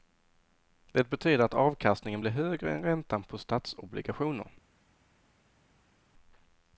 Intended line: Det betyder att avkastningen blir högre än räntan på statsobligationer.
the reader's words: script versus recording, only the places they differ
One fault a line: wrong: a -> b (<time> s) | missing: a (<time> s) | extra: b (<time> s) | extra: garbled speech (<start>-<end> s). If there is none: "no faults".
no faults